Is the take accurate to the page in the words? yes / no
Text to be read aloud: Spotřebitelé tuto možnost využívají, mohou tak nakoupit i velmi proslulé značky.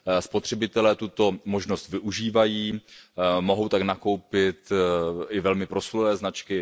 yes